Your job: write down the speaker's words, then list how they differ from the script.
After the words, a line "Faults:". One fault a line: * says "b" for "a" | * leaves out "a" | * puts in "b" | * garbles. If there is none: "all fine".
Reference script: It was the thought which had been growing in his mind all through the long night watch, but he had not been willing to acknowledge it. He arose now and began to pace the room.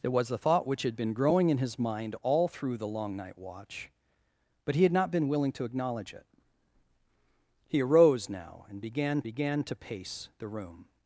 It was the thought which had been growing in his mind all through the long night watch, but he had not been willing to acknowledge it. He arose now and began began to pace the room.
Faults:
* puts in "began"